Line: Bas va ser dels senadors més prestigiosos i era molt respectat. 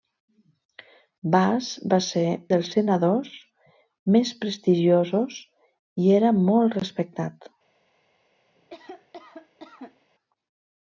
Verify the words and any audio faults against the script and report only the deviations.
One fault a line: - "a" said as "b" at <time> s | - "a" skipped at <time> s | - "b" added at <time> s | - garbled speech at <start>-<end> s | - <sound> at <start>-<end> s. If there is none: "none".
- cough at 8.5-10.1 s